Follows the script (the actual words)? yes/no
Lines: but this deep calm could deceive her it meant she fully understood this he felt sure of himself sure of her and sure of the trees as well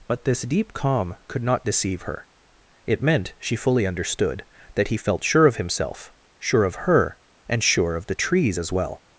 no